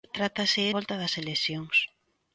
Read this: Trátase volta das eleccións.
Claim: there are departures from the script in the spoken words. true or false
false